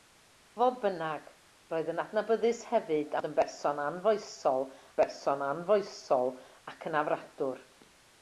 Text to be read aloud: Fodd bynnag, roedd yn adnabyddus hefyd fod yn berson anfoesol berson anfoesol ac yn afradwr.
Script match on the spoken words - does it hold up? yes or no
yes